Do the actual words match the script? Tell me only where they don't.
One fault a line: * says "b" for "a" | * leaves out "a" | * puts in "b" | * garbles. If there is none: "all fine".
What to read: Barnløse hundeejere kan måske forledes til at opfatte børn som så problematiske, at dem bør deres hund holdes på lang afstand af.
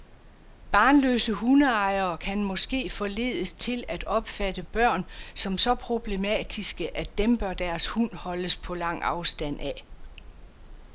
all fine